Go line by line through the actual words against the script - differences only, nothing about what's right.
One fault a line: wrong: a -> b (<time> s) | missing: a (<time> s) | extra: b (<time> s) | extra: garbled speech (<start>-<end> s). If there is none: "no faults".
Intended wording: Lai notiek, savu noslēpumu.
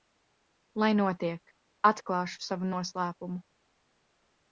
extra: atklāšu (1.9 s)